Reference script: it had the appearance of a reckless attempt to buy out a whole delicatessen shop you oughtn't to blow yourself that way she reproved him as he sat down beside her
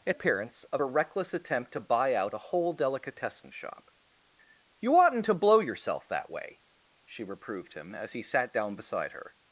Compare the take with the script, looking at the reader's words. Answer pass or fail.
fail